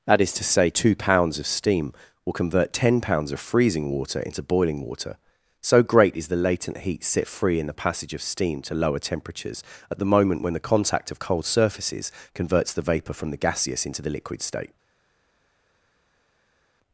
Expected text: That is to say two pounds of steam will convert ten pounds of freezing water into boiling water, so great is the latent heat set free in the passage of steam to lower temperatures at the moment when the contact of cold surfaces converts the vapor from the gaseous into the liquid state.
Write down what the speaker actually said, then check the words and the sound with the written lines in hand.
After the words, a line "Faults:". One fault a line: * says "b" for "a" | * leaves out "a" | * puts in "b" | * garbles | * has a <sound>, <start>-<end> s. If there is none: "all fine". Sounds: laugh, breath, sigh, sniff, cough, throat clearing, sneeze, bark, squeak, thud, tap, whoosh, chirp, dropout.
That is to say two pounds of steam will convert ten pounds of freezing water into boiling water, so great is the latent heat set free in the passage of steam to lower temperatures at the moment when the contact of cold surfaces converts the vapor from the gaseous into the liquid state.
Faults:
all fine